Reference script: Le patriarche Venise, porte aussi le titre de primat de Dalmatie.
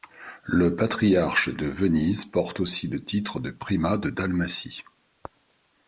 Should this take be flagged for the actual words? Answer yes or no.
yes